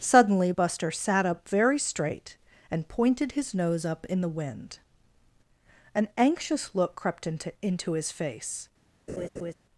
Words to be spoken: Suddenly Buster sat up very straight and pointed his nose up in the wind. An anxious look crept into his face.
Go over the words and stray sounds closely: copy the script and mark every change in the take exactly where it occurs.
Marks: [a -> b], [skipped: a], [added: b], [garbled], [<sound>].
Suddenly Buster sat up very straight and pointed his nose up in the wind. An anxious look crept into [added: into] his face. [laugh]